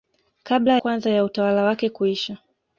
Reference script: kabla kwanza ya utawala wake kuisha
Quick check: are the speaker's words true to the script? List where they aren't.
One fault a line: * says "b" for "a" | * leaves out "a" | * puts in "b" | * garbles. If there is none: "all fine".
all fine